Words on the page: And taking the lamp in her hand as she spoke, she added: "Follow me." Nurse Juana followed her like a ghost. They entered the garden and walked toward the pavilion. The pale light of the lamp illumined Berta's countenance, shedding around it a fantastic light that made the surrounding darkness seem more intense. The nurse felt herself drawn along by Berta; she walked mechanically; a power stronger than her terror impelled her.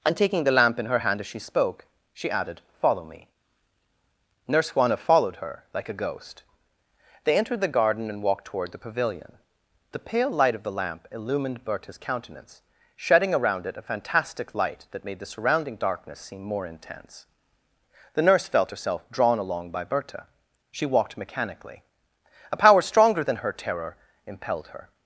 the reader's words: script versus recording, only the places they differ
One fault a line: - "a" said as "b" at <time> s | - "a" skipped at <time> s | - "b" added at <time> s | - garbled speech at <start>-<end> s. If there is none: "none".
none